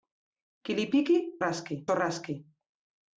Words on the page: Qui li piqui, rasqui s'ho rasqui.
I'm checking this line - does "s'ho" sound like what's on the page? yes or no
yes